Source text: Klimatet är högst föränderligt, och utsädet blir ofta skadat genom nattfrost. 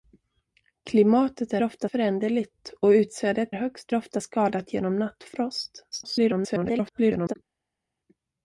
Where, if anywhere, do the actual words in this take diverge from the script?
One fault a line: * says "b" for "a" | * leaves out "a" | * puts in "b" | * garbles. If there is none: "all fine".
* says "ofta" for "högst"
* says "högst" for "blir"
* garbles